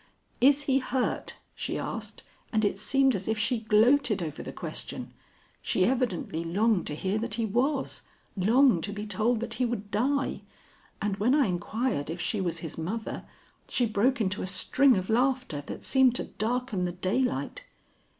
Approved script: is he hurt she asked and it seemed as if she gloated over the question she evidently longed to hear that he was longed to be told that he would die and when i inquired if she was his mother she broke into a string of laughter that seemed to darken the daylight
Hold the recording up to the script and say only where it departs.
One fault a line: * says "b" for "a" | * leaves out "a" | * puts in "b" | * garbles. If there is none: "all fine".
all fine